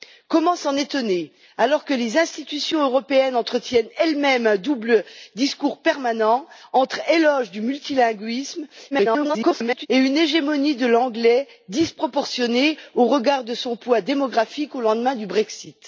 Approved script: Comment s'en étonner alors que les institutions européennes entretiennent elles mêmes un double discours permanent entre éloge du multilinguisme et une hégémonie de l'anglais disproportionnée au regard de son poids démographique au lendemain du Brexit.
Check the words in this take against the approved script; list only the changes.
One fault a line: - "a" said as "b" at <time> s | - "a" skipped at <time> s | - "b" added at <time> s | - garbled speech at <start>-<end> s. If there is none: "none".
- garbled speech at 8.9-9.9 s